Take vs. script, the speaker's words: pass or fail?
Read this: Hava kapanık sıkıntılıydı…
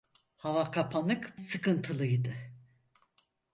pass